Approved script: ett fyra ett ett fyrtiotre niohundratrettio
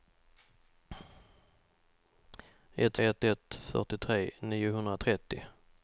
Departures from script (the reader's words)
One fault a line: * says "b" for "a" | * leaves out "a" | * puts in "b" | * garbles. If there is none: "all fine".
* leaves out "fyra"